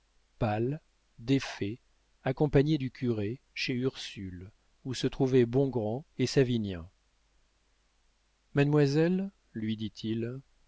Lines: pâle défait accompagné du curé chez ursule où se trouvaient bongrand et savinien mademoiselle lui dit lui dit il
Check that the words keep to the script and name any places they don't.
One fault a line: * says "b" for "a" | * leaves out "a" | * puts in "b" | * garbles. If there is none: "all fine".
* leaves out "lui dit"